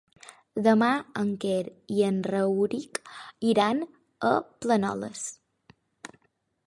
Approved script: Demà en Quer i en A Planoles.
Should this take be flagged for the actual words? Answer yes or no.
yes